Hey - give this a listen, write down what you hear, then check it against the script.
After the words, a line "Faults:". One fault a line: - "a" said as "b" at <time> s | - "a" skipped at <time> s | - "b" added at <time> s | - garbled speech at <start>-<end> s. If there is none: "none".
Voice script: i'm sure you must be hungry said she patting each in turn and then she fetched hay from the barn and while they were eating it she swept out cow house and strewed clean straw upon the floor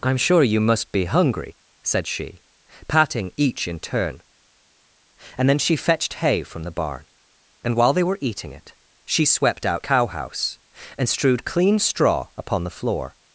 i'm sure you must be hungry said she patting each in turn and then she fetched hay from the barn and while they were eating it she swept out cow house and strewed clean straw upon the floor
Faults:
none